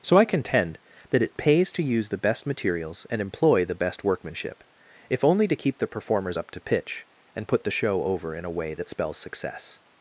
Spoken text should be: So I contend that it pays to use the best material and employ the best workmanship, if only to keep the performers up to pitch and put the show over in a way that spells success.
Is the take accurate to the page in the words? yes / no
no